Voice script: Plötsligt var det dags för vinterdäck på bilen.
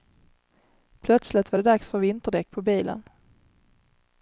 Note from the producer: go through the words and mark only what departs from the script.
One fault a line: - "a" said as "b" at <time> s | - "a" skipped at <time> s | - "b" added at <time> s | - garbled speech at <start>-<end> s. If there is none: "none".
none